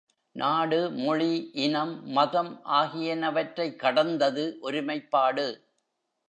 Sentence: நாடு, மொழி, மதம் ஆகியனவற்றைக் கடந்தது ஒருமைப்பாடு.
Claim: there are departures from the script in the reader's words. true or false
true